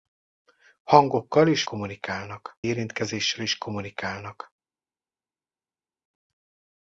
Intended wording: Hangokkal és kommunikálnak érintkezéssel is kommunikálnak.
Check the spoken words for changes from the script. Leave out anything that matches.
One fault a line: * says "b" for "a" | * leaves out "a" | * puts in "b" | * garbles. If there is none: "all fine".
all fine